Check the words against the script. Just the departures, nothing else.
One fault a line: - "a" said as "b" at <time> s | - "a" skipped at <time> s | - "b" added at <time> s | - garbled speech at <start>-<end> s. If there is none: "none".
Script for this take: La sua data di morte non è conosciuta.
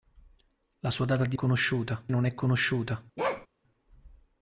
- "morte" said as "conosciuta" at 1.3 s